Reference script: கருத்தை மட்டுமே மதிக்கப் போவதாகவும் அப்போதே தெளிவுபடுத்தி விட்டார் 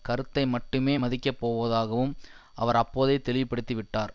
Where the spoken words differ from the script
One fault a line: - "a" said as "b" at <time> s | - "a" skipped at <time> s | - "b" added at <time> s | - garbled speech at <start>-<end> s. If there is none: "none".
- "அவர்" added at 2.5 s